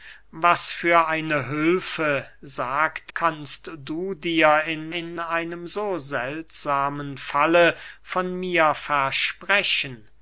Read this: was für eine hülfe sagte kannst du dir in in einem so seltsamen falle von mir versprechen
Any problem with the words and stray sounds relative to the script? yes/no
no